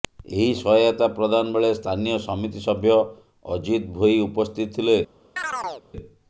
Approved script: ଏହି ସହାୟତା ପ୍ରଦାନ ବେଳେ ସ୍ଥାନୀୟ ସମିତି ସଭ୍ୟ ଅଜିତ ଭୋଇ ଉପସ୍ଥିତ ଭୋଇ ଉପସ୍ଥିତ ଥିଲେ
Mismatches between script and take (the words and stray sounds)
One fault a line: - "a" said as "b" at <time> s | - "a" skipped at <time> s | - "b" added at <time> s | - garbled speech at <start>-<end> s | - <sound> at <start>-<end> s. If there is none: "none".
- "ଭୋଇ ଉପସ୍ଥିତ" skipped at 4.8 s
- chirp at 5.4-5.9 s